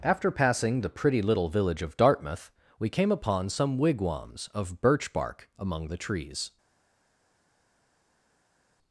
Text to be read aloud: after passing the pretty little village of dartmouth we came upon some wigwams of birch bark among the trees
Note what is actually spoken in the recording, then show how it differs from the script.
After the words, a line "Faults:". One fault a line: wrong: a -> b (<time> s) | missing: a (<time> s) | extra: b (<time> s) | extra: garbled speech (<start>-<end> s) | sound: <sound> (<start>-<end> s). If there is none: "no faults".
after passing the pretty little village of dartmouth we came upon some wigwams of birch bark among the trees
Faults:
no faults